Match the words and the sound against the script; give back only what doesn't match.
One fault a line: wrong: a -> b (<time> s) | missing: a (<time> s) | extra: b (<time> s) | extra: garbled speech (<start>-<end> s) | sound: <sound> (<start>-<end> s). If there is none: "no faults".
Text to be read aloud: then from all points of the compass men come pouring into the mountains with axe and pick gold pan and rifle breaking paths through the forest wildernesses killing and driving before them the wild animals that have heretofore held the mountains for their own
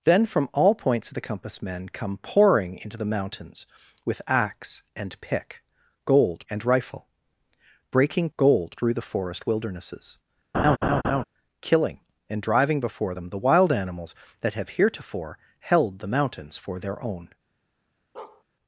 missing: pan (6.5 s)
wrong: paths -> gold (8.4 s)
sound: laugh (10.5-11.2 s)
sound: bark (18.1-18.4 s)